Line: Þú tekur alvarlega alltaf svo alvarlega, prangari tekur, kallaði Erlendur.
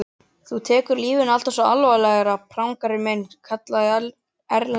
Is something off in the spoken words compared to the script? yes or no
yes